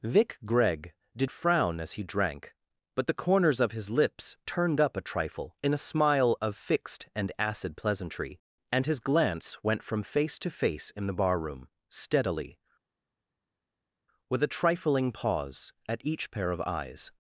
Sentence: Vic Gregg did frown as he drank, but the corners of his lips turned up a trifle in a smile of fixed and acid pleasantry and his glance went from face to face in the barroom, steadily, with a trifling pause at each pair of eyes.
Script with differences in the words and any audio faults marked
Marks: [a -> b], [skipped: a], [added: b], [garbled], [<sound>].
Vic Gregg did frown as he drank, but the corners of his lips turned up a trifle in a smile of fixed and acid pleasantry and his glance went from face to face in the barroom, steadily, with a trifling pause at each pair of eyes.